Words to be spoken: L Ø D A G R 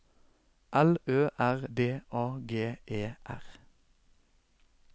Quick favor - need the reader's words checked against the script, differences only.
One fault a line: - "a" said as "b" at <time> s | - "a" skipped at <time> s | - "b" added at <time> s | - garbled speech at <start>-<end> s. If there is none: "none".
- "R" added at 1.4 s
- "E" added at 2.9 s